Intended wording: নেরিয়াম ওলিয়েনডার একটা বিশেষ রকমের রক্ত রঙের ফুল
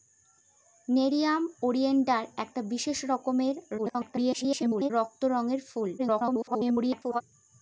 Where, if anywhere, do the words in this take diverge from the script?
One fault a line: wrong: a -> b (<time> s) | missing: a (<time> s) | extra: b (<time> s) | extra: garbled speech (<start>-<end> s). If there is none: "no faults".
extra: garbled speech (3.8-4.9 s)
extra: garbled speech (6.0-7.2 s)